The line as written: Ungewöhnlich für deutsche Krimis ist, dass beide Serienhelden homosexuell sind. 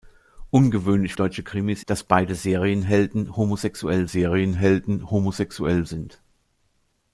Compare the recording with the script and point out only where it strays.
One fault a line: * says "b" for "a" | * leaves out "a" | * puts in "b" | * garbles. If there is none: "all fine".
* leaves out "für"
* leaves out "ist"
* puts in "Serienhelden homosexuell"